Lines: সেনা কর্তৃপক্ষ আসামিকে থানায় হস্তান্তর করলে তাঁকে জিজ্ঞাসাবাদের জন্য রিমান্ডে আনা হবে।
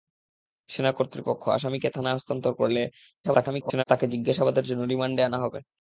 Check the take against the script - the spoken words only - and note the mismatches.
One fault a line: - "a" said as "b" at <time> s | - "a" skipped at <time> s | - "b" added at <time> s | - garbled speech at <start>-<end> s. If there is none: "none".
- garbled speech at 3.2-3.8 s